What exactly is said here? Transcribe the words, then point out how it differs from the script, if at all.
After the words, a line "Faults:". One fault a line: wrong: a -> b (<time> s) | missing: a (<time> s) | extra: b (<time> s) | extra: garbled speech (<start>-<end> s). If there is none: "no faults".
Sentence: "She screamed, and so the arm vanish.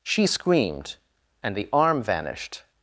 "She screamed, and the arm vanished.
Faults:
missing: so (1.6 s)
wrong: vanish -> vanished (2.0 s)